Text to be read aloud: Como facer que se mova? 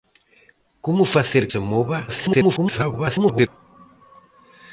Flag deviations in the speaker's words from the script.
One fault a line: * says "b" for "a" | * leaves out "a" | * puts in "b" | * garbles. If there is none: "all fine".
* leaves out "que"
* garbles